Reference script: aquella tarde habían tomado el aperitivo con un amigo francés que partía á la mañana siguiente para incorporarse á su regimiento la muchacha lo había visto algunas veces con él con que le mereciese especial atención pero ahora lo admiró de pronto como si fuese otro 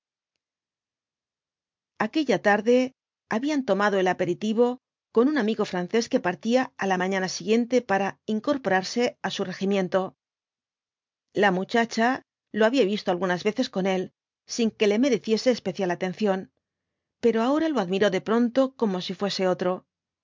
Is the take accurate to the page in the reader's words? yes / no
no